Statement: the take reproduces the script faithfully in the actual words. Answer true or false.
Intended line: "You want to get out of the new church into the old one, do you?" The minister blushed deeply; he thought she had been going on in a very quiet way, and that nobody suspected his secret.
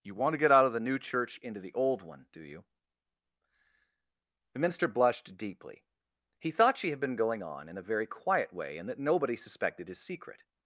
true